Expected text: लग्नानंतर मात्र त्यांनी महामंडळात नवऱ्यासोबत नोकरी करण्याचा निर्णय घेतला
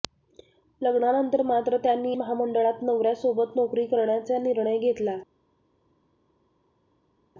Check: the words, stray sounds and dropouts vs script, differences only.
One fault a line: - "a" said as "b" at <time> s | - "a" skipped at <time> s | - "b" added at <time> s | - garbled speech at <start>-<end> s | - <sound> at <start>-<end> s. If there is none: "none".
none